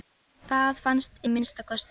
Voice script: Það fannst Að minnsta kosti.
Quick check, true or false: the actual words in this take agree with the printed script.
true